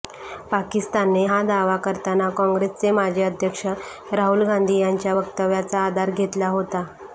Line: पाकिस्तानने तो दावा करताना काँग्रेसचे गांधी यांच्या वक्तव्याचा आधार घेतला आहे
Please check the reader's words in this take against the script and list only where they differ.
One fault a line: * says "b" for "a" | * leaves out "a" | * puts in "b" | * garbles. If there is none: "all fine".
* says "हा" for "तो"
* puts in "माजी अध्यक्ष राहुल"
* says "होता" for "आहे"